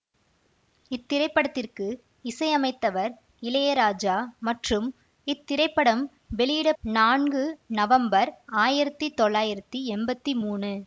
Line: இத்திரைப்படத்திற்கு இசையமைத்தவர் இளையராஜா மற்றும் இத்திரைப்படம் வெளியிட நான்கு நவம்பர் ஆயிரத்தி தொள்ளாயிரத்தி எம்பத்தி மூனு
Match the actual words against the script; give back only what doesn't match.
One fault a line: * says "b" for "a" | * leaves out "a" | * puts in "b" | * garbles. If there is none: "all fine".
all fine